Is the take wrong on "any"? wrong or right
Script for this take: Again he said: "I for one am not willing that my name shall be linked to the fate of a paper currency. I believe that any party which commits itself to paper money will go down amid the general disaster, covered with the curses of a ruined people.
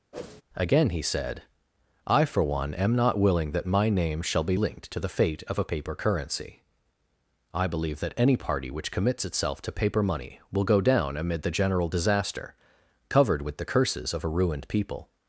right